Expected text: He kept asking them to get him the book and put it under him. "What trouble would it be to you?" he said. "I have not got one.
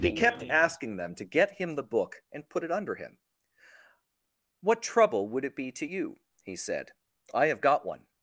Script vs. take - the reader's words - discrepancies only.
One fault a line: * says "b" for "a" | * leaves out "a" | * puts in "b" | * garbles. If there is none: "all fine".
* leaves out "not"